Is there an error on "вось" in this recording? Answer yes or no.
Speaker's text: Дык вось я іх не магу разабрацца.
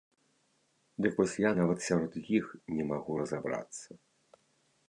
no